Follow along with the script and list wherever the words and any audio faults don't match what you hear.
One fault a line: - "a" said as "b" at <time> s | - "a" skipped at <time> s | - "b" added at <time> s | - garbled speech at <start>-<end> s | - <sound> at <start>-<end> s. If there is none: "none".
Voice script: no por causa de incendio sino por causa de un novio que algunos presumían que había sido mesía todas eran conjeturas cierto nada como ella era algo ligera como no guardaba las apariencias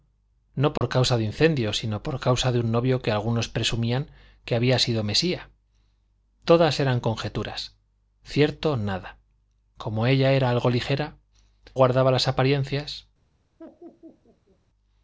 - dropout at 0.8-0.8 s
- "como no" skipped at 11.2 s
- laugh at 13.6-14.6 s